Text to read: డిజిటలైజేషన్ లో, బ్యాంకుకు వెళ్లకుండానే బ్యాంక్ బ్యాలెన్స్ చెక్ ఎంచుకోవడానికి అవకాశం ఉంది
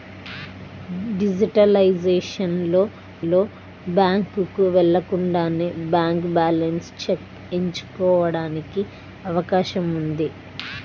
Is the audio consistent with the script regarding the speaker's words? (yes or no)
no